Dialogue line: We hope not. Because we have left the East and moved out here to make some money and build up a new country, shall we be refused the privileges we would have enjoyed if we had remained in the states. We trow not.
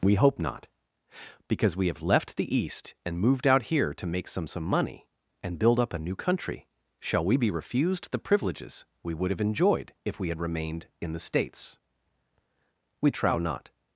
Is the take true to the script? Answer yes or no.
no